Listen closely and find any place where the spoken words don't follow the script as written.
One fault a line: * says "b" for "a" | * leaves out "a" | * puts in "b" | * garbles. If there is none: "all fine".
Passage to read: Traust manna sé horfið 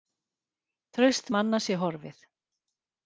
all fine